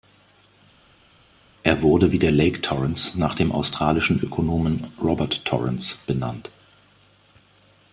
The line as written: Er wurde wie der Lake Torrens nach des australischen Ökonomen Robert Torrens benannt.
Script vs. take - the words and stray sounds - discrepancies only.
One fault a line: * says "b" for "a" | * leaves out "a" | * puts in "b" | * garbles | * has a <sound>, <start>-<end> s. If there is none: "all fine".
* says "dem" for "des"